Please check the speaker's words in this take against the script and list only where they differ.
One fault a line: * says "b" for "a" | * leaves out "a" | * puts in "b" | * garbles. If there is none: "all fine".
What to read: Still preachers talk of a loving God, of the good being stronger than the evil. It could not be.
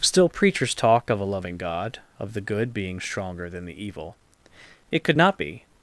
all fine